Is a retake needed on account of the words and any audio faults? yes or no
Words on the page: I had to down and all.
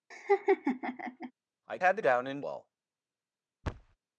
yes